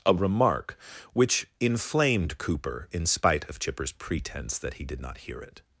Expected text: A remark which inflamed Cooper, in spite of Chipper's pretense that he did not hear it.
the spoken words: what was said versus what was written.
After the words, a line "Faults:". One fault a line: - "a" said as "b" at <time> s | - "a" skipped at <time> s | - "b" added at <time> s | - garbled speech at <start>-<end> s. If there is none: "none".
A remark which inflamed Cooper, in spite of Chipper's pretense that he did not hear it.
Faults:
none